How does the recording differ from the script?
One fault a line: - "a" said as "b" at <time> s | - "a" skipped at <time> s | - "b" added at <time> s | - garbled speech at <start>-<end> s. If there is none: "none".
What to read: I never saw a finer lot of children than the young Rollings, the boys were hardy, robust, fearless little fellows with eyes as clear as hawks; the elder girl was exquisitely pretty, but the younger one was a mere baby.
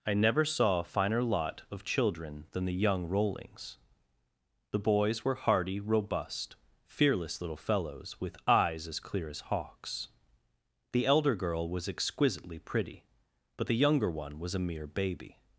none